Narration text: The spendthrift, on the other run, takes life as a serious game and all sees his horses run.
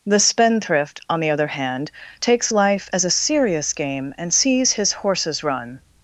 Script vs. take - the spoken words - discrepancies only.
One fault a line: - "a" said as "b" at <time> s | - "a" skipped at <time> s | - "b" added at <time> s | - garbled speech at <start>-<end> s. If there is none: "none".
- "run" said as "hand" at 1.4 s
- "all" skipped at 4.3 s